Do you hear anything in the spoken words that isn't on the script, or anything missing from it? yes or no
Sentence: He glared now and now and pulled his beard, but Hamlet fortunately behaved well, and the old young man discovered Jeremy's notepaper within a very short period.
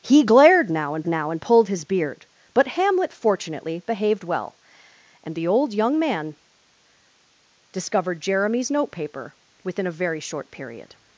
no